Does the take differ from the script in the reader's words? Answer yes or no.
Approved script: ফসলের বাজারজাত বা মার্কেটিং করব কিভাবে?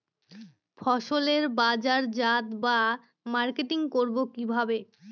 no